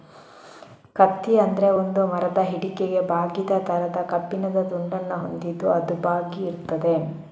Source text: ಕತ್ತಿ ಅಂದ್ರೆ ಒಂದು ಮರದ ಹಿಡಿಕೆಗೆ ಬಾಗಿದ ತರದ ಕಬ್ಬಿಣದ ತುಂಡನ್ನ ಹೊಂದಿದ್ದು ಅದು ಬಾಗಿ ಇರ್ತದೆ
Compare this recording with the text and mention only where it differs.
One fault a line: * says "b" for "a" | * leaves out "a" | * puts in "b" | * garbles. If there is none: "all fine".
all fine